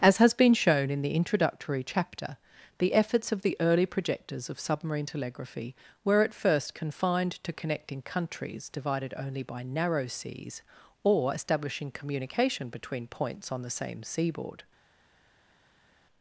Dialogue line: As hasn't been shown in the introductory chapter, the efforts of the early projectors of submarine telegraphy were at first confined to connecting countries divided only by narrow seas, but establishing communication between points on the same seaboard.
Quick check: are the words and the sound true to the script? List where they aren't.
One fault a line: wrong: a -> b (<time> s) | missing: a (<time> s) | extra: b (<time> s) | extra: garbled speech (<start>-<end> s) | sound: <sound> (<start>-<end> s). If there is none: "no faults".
wrong: hasn't -> has (0.2 s)
wrong: but -> or (11.0 s)